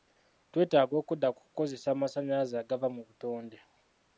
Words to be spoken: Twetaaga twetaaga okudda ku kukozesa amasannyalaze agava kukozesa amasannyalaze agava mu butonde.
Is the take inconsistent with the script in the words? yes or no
yes